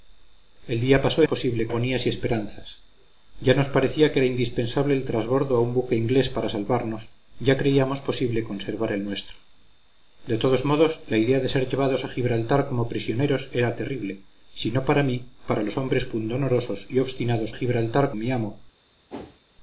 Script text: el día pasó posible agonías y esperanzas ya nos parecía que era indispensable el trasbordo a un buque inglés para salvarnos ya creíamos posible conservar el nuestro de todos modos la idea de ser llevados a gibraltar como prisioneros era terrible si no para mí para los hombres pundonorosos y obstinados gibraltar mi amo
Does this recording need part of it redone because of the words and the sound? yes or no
yes